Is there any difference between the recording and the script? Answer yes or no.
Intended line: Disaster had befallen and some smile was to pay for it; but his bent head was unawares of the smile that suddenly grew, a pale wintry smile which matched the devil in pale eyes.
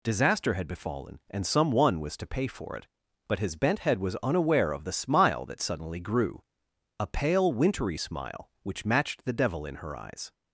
yes